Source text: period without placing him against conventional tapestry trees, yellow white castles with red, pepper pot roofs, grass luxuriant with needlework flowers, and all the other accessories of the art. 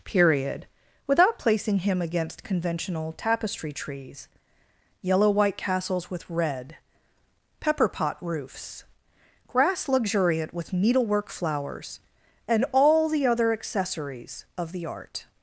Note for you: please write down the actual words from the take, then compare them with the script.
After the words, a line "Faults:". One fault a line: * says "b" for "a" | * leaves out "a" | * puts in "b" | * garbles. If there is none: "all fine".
period without placing him against conventional tapestry trees, yellow white castles with red, pepper pot roofs, grass luxuriant with needlework flowers, and all the other accessories of the art.
Faults:
all fine